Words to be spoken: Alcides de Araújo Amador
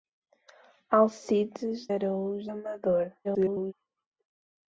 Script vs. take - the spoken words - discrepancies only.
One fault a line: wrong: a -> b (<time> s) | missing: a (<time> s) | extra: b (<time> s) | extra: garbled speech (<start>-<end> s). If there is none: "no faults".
missing: de (1.9 s)
extra: garbled speech (3.2-3.7 s)